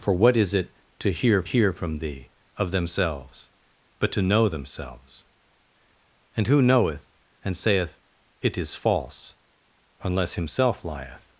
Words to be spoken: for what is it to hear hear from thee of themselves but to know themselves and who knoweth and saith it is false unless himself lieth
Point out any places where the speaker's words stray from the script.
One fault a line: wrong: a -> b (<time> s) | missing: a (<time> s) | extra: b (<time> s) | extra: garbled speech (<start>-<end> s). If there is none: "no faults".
no faults